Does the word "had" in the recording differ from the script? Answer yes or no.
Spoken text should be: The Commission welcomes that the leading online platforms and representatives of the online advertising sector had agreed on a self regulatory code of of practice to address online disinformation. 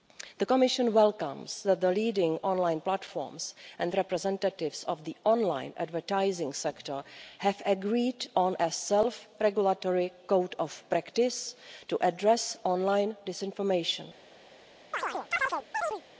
yes